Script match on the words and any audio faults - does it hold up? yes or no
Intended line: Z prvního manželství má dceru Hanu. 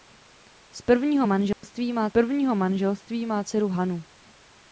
no